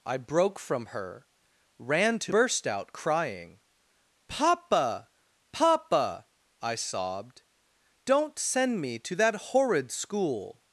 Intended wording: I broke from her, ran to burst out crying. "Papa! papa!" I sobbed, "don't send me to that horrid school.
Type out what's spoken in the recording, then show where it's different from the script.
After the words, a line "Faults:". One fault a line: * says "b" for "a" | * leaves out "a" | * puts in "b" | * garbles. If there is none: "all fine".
I broke from her, ran to burst out crying. "Papa! papa!" I sobbed, "don't send me to that horrid school.
Faults:
all fine